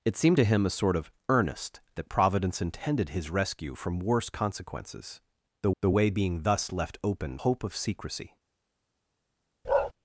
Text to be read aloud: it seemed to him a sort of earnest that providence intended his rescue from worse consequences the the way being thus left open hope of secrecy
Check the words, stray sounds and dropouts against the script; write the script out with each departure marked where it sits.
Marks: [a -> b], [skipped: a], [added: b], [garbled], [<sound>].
it seemed to him a sort of earnest that providence intended his rescue from worse consequences the the way being thus left open hope of secrecy [bark]